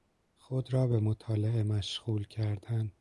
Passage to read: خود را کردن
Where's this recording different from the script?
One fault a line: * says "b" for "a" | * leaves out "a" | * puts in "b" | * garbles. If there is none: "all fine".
* puts in "به مطالعه مشغول"